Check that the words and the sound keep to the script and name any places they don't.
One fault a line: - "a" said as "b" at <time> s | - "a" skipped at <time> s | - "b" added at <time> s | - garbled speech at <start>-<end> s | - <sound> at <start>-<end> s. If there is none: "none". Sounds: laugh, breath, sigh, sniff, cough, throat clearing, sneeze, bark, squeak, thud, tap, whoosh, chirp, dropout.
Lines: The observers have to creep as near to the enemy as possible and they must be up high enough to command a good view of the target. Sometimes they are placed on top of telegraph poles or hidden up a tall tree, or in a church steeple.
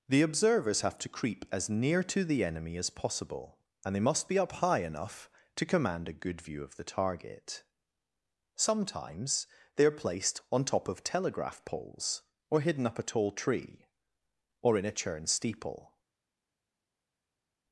- "church" said as "churn" at 14.9 s